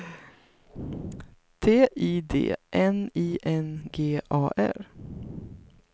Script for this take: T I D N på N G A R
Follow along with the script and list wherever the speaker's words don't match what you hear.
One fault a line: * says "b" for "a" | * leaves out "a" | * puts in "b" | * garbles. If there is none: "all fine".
* says "I" for "på"